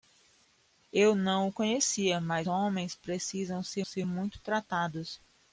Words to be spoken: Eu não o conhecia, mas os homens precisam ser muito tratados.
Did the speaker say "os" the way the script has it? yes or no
no